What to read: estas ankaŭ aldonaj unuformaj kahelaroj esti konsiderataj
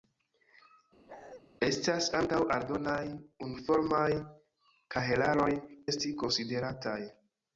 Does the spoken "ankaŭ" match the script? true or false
true